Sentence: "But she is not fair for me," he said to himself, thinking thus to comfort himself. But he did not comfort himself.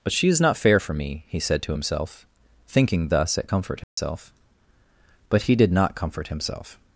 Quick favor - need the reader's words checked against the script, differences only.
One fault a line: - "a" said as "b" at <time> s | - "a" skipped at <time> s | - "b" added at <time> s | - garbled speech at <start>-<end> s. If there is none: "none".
- "to" said as "at" at 3.4 s